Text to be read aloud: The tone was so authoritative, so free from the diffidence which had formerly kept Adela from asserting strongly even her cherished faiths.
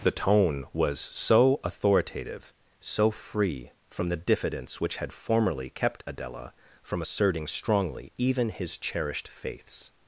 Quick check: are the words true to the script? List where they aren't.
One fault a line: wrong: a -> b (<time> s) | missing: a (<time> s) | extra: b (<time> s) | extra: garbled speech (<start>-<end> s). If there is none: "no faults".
wrong: her -> his (8.5 s)